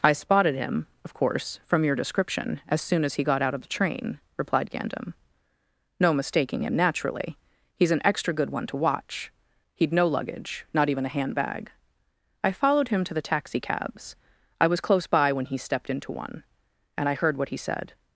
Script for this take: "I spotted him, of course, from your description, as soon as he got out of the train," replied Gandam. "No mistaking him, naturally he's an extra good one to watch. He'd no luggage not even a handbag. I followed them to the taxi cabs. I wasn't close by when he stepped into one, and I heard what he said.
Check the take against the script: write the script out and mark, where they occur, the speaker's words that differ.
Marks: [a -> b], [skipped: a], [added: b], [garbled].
"I spotted him, of course, from your description, as soon as he got out of the train," replied Gandam. "No mistaking him, naturally he's an extra good one to watch. He'd no luggage not even a handbag. I followed [them -> him] to the taxi cabs. I [wasn't -> was] close by when he stepped into one, and I heard what he said.